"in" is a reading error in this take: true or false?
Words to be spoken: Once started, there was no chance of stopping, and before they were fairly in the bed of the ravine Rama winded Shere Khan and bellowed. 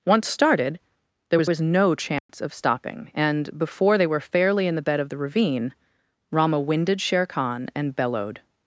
false